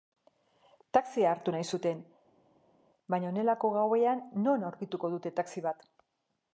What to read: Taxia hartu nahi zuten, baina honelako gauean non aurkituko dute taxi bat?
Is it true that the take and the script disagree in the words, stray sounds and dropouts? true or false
false